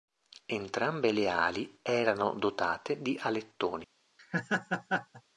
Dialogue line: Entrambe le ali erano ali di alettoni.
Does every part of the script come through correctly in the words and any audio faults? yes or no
no